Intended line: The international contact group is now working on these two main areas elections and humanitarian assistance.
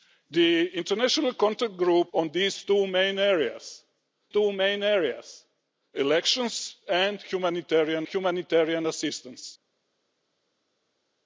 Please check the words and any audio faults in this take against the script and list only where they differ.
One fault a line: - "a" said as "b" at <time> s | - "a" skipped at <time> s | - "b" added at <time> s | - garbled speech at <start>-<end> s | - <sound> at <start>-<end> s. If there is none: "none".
- "is now working on these" said as "on these two main areas" at 2.1 s
- "humanitarian" added at 8.0 s